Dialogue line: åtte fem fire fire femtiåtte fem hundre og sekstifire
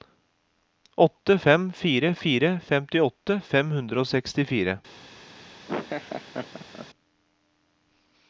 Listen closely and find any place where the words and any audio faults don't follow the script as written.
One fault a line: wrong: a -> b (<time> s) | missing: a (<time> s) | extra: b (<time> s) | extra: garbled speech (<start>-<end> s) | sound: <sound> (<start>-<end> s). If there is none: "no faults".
sound: laugh (5.7-6.9 s)